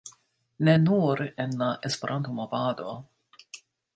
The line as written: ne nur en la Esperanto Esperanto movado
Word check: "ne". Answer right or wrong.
right